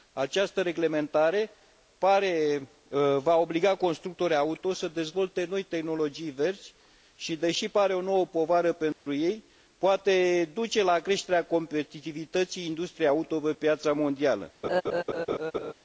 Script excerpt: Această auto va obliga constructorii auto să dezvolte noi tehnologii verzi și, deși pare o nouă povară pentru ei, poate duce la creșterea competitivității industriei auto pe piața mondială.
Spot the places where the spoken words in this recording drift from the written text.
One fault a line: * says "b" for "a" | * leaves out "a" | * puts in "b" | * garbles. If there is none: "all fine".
* says "reglementare" for "auto"